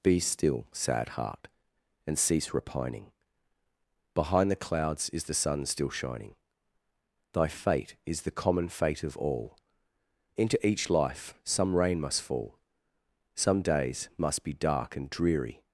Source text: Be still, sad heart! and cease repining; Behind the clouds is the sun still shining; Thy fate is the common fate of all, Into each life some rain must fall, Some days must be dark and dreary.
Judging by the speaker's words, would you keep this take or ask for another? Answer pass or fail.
pass